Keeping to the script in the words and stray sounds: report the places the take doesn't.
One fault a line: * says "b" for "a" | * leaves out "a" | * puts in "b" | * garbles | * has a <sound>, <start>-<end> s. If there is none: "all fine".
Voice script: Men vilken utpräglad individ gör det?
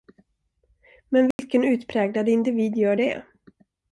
* has a dropout, 1.3-1.4 s